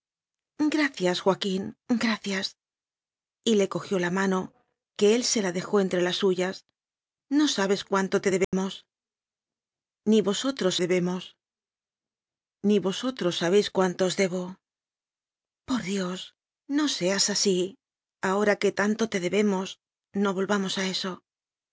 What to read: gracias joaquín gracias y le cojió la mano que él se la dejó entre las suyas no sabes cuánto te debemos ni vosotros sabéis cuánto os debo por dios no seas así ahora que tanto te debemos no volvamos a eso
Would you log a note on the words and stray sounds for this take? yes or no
yes